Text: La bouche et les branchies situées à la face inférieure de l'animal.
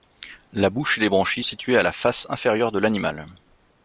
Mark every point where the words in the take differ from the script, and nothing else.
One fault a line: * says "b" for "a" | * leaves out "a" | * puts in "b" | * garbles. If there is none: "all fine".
all fine